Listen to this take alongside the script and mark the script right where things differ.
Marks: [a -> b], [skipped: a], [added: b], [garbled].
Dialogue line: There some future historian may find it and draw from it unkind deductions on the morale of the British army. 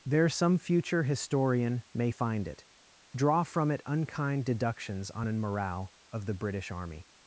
There some future historian may find it [skipped: and] draw from it unkind deductions on [the -> an] morale of the British army.